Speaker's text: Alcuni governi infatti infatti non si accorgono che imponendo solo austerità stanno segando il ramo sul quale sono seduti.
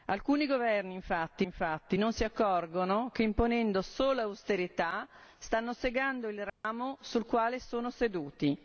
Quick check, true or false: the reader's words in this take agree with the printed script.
true